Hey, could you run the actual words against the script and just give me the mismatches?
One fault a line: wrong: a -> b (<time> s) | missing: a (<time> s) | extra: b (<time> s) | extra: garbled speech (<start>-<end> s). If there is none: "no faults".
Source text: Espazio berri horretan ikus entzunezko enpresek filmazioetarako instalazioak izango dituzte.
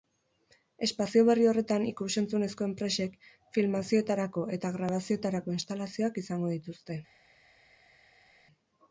extra: eta grabazioetarako (4.6 s)